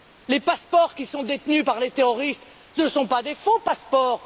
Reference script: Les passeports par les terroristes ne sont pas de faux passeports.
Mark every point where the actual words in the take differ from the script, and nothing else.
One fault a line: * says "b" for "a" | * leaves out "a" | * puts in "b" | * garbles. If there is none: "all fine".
* puts in "qui sont détenus"